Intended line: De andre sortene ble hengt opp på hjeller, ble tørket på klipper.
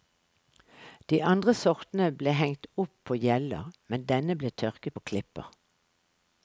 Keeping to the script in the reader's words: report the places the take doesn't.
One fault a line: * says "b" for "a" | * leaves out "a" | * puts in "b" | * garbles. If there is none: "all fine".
* puts in "men denne"